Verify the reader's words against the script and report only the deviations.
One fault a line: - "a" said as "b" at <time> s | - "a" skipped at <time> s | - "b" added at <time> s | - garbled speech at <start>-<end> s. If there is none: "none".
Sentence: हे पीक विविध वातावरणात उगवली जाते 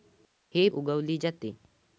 - "पीक विविध वातावरणात" skipped at 0.7 s